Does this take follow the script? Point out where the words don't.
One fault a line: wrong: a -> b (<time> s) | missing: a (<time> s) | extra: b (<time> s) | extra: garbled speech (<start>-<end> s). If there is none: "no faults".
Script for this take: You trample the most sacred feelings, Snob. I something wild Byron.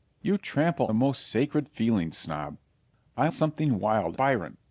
no faults